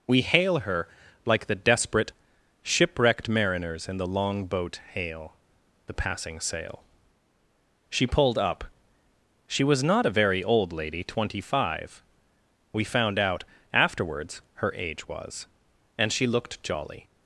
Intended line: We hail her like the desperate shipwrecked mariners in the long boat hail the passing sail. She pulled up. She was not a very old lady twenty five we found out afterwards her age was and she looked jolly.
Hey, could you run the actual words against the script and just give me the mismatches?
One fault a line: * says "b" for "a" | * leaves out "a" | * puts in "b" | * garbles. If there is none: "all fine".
all fine